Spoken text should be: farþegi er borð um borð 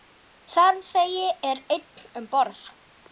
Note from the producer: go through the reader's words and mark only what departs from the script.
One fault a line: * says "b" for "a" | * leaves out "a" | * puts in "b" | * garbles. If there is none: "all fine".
* says "einn" for "borð"